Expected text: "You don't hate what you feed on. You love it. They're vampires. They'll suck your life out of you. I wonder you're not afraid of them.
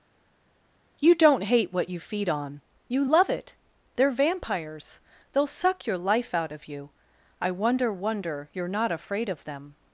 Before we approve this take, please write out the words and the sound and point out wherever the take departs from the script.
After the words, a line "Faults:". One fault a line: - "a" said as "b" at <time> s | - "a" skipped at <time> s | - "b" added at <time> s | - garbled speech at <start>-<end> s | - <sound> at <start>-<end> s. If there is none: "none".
"You don't hate what you feed on. You love it. They're vampires. They'll suck your life out of you. I wonder wonder you're not afraid of them.
Faults:
- "wonder" added at 7.9 s